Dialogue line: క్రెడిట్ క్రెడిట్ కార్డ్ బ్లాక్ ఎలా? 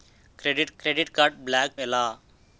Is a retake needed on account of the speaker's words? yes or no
no